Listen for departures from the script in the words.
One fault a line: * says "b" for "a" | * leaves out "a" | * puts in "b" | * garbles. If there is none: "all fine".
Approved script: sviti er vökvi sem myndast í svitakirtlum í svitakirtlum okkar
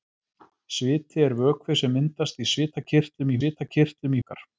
all fine